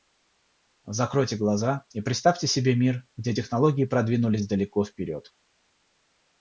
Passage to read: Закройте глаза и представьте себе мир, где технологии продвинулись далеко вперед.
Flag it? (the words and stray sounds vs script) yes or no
no